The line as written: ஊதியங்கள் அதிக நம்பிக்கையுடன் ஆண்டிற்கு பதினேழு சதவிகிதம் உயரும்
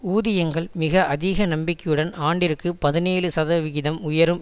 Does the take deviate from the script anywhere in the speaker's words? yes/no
yes